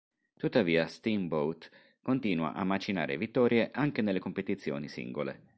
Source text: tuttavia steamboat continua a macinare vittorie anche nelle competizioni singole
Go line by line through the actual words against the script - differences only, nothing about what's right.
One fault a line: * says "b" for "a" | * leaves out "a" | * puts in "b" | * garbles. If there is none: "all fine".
all fine